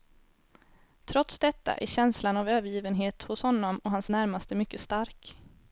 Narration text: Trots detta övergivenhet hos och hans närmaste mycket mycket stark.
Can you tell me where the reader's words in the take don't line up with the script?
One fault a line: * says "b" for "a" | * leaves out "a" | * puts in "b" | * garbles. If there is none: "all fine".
* puts in "är känslan av"
* puts in "honom"
* leaves out "mycket"